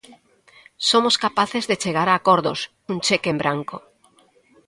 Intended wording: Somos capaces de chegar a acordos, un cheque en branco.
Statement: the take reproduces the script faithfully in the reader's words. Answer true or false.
true